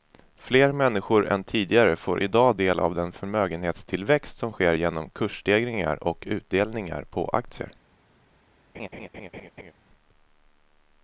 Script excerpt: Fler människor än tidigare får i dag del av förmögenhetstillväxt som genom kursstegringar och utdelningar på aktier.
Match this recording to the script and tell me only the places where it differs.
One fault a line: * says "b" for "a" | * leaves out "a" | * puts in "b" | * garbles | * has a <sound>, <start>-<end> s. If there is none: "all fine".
* puts in "den"
* puts in "sker"
* has a laugh, 8.7-9.7 s